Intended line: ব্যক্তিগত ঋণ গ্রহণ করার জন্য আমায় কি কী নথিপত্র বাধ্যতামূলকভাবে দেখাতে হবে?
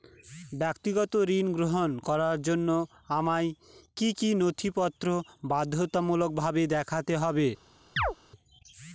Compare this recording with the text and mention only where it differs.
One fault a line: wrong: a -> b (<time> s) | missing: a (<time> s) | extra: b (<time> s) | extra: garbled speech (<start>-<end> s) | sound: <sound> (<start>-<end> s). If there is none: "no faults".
sound: chirp (8.0-8.1 s)